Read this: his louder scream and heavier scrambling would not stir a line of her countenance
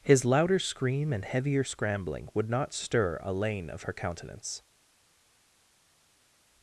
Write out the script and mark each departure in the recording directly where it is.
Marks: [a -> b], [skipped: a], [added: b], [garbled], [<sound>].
his louder scream and heavier scrambling would not stir a [line -> lane] of her countenance